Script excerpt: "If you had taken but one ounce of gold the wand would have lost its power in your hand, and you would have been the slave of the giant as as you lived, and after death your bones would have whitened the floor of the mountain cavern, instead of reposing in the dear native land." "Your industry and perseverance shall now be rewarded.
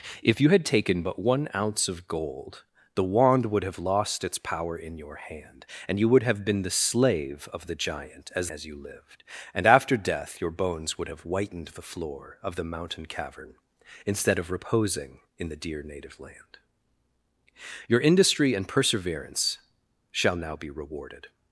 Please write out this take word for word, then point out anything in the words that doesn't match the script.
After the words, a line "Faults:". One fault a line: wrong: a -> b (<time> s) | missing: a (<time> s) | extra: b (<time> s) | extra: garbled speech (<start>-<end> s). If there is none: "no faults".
"If you had taken but one ounce of gold the wand would have lost its power in your hand, and you would have been the slave of the giant as as you lived, and after death your bones would have whitened the floor of the mountain cavern, instead of reposing in the dear native land." "Your industry and perseverance shall now be rewarded.
Faults:
no faults